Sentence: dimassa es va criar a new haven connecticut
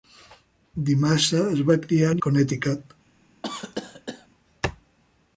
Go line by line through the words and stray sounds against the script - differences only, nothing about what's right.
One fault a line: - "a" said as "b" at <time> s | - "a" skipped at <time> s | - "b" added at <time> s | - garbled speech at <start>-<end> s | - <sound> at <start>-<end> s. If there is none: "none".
- "new haven" skipped at 2.2 s
- cough at 3.4-4.3 s